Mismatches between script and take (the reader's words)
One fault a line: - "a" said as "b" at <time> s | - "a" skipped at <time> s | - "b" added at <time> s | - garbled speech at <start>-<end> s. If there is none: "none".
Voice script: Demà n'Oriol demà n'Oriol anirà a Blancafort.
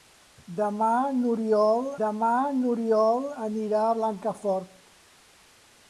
none